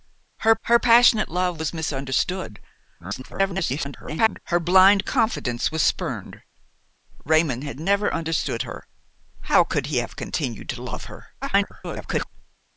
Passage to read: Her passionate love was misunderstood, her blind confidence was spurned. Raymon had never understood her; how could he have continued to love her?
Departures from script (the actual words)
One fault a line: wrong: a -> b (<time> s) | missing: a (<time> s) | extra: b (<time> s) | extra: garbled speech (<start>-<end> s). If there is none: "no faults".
extra: her (0.6 s)
extra: garbled speech (3.0-4.4 s)
extra: garbled speech (11.4-12.3 s)